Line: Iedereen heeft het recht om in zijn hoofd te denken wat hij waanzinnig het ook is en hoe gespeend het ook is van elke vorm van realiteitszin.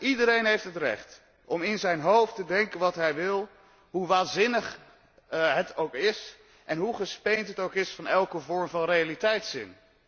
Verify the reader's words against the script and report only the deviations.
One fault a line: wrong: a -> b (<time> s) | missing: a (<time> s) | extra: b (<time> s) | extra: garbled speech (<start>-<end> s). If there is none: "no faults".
extra: wil hoe (3.1 s)